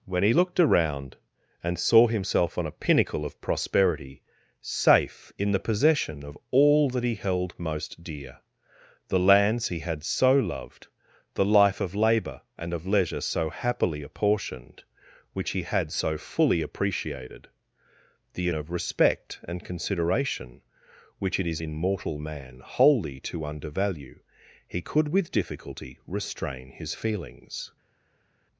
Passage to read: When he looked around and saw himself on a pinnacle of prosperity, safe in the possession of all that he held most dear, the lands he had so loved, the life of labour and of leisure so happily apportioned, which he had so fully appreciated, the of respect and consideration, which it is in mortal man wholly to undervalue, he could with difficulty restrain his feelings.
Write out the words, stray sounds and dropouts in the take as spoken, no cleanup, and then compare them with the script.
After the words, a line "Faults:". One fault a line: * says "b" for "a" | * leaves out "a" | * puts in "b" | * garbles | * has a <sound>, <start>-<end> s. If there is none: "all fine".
When he looked around and saw himself on a pinnacle of prosperity, safe in the possession of all that he held most dear, the lands he had so loved, the life of labour and of leisure so happily apportioned, which he had so fully appreciated, the of respect and consideration, which it is in mortal man wholly to undervalue, he could with difficulty restrain his feelings.
Faults:
all fine